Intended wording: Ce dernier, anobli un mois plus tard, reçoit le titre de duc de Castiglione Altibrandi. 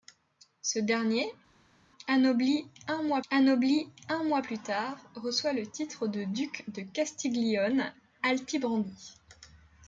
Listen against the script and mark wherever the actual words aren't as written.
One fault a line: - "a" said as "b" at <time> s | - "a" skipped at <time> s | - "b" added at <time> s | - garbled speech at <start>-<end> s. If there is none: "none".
- "anobli un mois" added at 3.3 s